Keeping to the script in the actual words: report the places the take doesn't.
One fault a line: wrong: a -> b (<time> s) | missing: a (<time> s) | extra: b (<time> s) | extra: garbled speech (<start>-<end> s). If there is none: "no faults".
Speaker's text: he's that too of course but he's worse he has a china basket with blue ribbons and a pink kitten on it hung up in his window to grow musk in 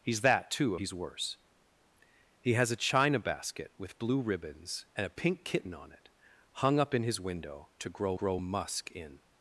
missing: of course but (0.8 s)
extra: grow (8.1 s)